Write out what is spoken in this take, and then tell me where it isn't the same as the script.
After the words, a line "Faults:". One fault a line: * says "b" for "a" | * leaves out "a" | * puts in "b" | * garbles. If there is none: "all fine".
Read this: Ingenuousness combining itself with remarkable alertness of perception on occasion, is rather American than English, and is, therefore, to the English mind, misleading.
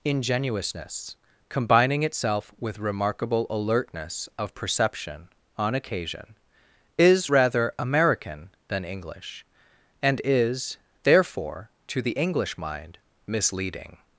Ingenuousness combining itself with remarkable alertness of perception on occasion, is rather American than English, and is, therefore, to the English mind, misleading.
Faults:
all fine